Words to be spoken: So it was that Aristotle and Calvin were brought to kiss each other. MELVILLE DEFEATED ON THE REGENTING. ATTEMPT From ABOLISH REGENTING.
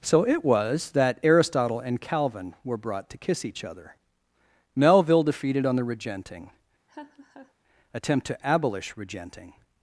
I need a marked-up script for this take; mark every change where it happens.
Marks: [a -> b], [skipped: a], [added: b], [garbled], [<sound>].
So it was that Aristotle and Calvin were brought to kiss each other. MELVILLE DEFEATED ON THE REGENTING. [laugh] ATTEMPT [From -> TO] ABOLISH REGENTING.